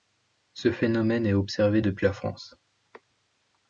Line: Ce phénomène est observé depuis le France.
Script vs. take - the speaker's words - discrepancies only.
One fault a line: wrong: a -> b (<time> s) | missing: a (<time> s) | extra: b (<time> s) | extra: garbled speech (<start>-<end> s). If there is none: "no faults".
wrong: le -> la (2.0 s)